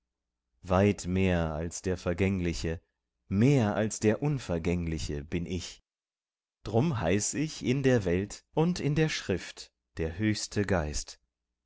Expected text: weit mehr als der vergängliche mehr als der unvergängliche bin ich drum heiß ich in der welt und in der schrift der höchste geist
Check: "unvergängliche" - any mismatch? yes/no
no